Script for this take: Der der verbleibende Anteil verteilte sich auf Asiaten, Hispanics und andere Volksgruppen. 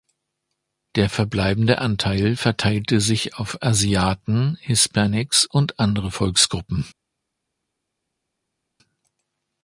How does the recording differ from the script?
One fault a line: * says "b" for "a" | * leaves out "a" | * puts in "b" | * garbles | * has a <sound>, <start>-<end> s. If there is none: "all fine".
* leaves out "der"